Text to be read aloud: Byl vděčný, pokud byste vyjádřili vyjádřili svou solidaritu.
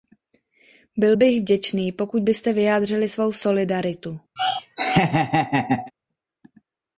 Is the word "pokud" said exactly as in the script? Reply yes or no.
yes